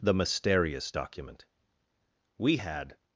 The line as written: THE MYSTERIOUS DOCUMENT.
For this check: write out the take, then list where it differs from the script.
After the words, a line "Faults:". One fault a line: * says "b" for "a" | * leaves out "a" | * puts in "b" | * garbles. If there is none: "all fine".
THE MYSTERIOUS DOCUMENT. WE had
Faults:
* puts in "WE had"